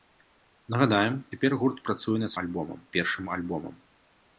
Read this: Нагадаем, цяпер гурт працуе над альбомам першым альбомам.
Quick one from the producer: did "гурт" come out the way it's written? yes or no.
yes